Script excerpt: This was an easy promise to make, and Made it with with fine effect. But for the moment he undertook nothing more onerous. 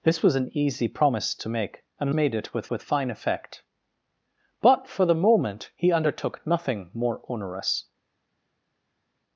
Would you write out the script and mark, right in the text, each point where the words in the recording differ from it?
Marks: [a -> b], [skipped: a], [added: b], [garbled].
This was an easy promise to make, and Made it with with fine effect. But for the moment he undertook nothing more onerous.